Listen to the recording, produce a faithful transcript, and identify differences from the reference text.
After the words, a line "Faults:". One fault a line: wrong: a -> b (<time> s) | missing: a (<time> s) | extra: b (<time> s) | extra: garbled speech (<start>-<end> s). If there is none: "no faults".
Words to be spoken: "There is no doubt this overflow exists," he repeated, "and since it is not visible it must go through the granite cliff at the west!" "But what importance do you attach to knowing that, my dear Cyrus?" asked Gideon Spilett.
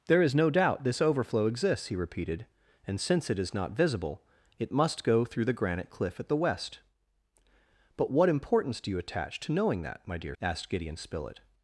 "There is no doubt this overflow exists," he repeated, "and since it is not visible it must go through the granite cliff at the west!" "But what importance do you attach to knowing that, my dear?" Asked Gideon Spilett.
Faults:
missing: Cyrus (10.4 s)